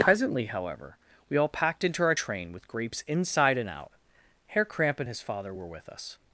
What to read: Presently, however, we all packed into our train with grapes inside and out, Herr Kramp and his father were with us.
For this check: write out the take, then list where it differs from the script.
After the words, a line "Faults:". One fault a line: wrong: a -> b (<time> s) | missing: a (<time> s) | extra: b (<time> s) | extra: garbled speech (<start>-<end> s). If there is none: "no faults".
Presently, however, we all packed into our train with grapes inside and out, Herr Kramp and his father were with us.
Faults:
no faults